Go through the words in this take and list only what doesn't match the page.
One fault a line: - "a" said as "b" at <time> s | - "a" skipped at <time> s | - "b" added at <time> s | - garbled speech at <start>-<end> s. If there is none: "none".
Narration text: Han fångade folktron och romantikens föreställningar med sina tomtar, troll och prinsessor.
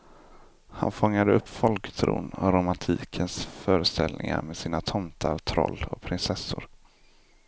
- "upp" added at 1.3 s